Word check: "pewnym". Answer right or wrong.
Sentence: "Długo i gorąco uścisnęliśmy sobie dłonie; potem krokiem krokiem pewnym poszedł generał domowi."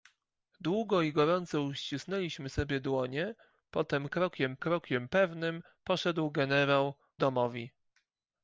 right